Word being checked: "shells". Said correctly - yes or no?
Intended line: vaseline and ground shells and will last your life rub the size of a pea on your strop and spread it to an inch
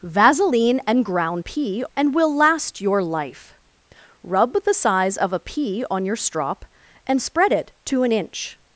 no